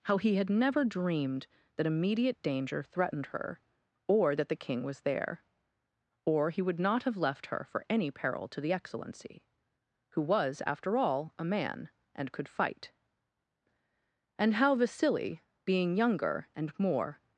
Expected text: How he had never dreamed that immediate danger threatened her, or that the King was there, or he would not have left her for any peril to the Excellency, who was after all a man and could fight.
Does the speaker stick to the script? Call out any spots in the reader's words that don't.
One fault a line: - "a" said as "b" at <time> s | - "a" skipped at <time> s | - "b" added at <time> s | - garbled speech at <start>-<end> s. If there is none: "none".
- "And How Vasili being younger and more" added at 14.4 s